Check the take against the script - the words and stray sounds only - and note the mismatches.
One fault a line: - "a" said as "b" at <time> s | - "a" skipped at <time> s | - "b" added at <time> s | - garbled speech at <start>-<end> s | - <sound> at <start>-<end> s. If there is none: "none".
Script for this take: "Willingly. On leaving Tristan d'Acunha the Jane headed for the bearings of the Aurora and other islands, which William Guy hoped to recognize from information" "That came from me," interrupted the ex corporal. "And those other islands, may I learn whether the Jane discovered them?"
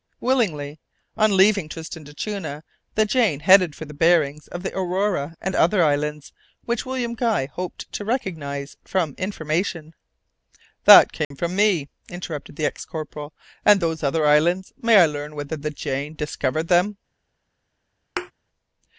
- dropout at 11.2-11.3 s
- thud at 18.2-18.3 s